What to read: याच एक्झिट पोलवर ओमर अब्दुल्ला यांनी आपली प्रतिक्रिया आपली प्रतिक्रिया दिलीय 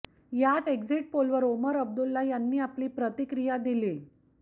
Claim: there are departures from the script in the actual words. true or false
true